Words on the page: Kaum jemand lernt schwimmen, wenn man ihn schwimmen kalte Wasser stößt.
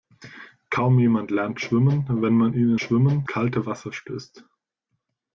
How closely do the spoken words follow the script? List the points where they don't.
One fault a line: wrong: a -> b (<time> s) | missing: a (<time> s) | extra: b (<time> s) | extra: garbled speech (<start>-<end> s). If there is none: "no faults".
no faults